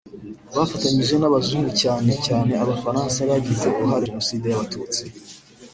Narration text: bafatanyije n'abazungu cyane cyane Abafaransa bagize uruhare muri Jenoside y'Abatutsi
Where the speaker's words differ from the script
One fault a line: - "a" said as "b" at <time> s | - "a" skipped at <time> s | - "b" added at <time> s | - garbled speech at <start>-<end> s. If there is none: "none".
- "muri" skipped at 4.0 s